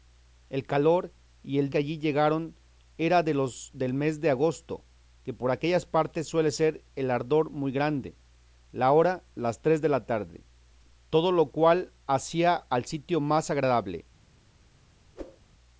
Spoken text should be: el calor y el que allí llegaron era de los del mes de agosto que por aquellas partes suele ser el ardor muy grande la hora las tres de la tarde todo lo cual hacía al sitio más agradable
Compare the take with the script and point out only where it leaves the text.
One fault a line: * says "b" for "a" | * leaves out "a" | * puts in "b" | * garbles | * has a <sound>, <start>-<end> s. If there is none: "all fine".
* has a whoosh, 15.2-15.4 s